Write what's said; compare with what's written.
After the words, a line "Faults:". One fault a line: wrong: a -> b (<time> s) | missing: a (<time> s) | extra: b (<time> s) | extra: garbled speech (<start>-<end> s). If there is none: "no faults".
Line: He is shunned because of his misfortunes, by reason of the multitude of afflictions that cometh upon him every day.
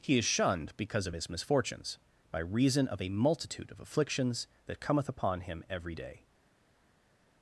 He is shunned because of his misfortunes, by reason of a multitude of afflictions that cometh upon him every day.
Faults:
wrong: the -> a (3.0 s)